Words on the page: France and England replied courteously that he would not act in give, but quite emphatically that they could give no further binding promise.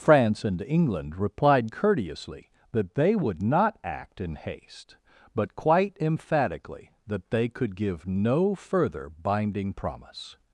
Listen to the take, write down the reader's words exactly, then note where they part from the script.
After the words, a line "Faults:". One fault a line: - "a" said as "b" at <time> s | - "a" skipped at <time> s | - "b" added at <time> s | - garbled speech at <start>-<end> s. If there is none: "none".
France and England replied courteously that they would not act in haste, but quite emphatically that they could give no further binding promise.
Faults:
- "he" said as "they" at 3.0 s
- "give" said as "haste" at 4.4 s